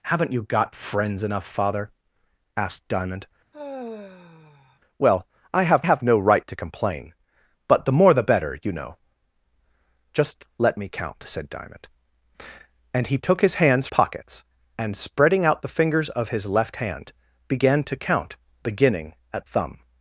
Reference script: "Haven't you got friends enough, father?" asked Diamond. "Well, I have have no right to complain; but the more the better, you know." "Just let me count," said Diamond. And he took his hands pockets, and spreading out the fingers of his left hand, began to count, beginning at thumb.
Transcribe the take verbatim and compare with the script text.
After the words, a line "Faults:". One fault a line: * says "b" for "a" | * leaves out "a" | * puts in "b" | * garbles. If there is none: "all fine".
"Haven't you got friends enough, father?" asked Diamond. "Well, I have have no right to complain; but the more the better, you know." "Just let me count," said Diamond. And he took his hands pockets, and spreading out the fingers of his left hand, began to count, beginning at thumb.
Faults:
all fine